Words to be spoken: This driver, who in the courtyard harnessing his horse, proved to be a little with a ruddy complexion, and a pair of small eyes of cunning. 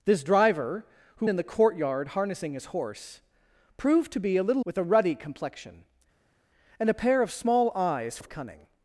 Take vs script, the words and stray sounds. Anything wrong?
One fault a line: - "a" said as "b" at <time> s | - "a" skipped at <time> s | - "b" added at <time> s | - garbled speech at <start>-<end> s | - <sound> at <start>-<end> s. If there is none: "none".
none